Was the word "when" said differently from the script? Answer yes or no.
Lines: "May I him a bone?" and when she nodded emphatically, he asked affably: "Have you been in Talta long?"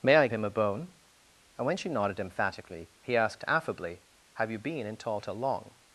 no